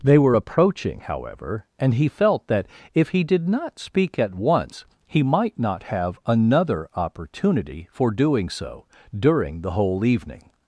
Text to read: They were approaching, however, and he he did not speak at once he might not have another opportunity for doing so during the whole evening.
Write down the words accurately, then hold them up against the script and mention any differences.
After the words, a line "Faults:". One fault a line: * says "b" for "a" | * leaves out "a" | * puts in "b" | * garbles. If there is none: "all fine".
They were approaching, however, and he felt that if he did not speak at once he might not have another opportunity for doing so during the whole evening.
Faults:
* puts in "felt that if"